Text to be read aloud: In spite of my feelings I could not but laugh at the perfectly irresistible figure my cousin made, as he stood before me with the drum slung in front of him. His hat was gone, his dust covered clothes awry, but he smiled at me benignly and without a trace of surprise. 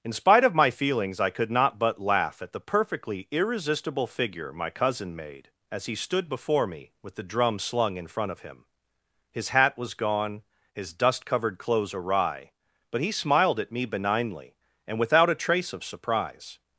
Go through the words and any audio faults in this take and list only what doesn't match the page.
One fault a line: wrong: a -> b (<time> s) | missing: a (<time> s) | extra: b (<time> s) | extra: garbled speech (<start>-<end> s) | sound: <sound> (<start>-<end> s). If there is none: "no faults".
no faults